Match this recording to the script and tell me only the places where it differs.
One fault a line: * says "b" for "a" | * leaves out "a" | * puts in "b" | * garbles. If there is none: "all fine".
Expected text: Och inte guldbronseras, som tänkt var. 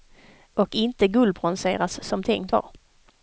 all fine